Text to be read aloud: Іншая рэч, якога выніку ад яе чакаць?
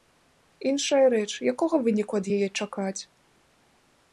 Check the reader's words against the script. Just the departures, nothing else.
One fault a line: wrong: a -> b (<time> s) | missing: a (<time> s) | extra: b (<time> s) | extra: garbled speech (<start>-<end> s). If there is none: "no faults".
no faults